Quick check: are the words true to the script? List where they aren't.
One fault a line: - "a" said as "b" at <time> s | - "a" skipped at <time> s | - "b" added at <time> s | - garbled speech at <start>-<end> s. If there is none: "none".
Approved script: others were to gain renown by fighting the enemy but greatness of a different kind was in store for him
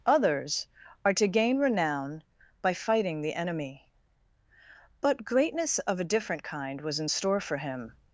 - "were" said as "are" at 1.1 s